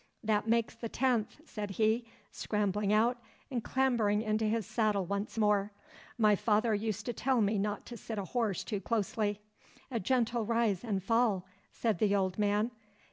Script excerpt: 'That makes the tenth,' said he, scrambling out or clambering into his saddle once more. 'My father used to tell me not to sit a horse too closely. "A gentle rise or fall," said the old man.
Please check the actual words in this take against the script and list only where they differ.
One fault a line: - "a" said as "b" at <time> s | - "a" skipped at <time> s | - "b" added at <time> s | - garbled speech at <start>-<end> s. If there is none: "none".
- "or" said as "and" at 3.5 s
- "or" said as "and" at 10.8 s